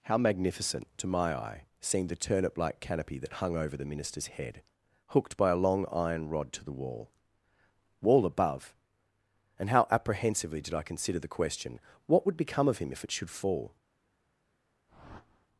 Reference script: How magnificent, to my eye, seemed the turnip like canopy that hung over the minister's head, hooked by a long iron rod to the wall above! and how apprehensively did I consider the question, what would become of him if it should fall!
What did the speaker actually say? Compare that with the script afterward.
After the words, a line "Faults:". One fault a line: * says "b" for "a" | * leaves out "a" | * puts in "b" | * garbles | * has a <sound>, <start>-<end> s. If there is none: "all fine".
How magnificent, to my eye, seemed the turnip like canopy that hung over the minister's head, hooked by a long iron rod to the wall wall above! and how apprehensively did I consider the question, what would become of him if it should fall!
Faults:
* puts in "wall"
* has a whoosh, 14.9-15.5 s